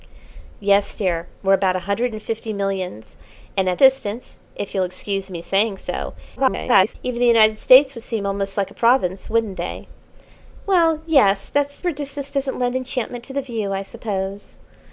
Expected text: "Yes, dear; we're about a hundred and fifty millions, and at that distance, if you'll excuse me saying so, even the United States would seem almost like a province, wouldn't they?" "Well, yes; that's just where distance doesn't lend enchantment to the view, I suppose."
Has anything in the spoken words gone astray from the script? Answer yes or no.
yes